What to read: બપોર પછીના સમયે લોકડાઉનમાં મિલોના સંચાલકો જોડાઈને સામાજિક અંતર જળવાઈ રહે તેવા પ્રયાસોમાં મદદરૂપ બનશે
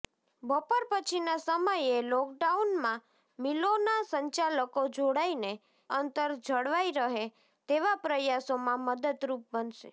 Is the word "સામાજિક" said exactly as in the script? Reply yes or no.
no